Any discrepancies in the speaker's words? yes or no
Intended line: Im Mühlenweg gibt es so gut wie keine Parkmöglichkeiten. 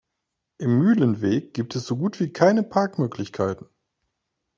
no